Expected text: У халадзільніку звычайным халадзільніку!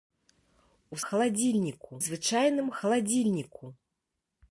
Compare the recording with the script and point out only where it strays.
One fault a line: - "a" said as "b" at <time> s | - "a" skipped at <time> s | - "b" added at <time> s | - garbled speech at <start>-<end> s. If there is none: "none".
none